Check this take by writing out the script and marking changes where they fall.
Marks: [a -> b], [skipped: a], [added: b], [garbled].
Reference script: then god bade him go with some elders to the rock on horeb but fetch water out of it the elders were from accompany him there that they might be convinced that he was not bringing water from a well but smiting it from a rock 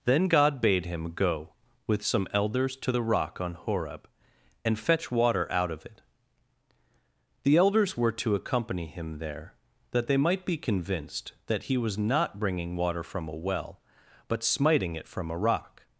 then god bade him go with some elders to the rock on horeb [but -> and] fetch water out of it the elders were [from -> to] accompany him there that they might be convinced that he was not bringing water from a well but smiting it from a rock